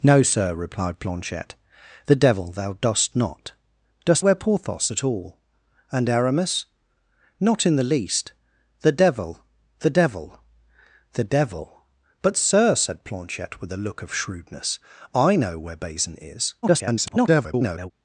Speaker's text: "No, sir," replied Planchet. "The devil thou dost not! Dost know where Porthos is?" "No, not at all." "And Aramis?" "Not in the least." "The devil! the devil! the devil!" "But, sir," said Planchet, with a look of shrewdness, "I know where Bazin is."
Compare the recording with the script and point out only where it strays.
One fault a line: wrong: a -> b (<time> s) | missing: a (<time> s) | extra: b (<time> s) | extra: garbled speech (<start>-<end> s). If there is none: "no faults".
missing: know (4.2 s)
missing: is No not (4.9 s)
extra: garbled speech (16.6-17.9 s)